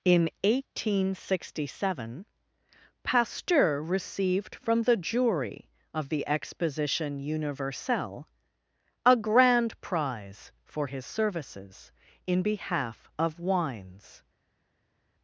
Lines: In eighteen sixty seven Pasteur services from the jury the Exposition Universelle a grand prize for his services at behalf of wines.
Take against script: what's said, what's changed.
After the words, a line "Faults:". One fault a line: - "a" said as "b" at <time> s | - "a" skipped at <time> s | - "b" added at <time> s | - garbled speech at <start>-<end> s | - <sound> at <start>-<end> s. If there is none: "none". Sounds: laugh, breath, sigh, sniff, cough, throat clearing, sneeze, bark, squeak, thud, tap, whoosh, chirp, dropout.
In eighteen sixty seven Pasteur received from the jury of the Exposition Universelle a grand prize for his services in behalf of wines.
Faults:
- "services" said as "received" at 3.8 s
- "of" added at 5.9 s
- "at" said as "in" at 12.3 s